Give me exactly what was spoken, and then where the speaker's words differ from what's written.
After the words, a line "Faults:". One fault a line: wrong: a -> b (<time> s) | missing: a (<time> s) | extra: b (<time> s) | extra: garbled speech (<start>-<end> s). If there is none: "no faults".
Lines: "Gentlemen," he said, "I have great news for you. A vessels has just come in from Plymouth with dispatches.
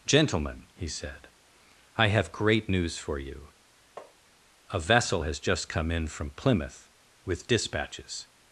"Gentlemen," he said, "I have great news for you. A vessel has just come in from Plymouth with dispatches.
Faults:
wrong: vessels -> vessel (4.8 s)